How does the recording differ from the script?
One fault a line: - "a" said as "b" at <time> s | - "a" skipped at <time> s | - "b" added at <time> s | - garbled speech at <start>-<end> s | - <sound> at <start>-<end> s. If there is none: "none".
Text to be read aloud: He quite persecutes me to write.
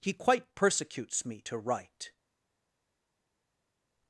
none